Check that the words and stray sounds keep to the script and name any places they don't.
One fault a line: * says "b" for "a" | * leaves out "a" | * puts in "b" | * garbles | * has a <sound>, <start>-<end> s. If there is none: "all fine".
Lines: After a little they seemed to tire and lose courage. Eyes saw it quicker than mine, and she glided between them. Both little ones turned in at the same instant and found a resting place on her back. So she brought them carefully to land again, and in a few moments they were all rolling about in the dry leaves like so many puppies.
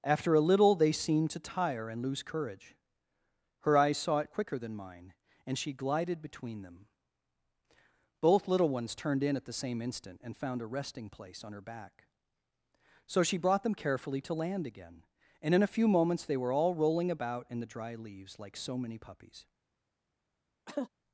* puts in "Her"
* has a cough, 20.7-20.9 s